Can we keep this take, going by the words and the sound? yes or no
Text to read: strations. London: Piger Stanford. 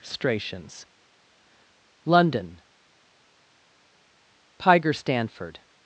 yes